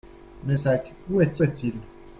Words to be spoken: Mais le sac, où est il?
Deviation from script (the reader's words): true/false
true